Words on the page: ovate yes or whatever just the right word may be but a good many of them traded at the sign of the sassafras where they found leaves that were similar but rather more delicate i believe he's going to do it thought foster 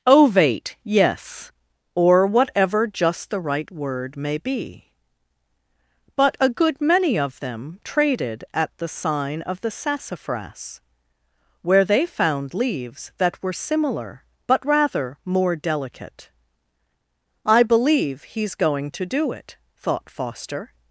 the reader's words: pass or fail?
pass